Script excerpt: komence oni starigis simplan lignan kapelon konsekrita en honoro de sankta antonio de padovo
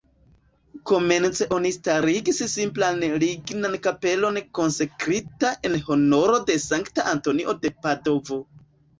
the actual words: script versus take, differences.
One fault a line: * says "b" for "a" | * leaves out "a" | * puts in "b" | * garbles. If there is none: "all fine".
all fine